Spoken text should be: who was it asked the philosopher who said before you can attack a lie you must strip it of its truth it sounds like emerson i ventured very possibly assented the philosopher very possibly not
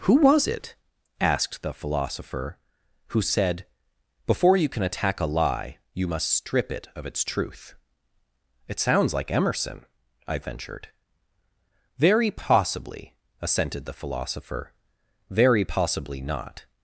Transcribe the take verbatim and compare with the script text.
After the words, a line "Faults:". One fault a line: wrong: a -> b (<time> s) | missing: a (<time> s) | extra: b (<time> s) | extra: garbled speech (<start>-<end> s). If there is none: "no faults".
who was it asked the philosopher who said before you can attack a lie you must strip it of its truth it sounds like emerson i ventured very possibly assented the philosopher very possibly not
Faults:
no faults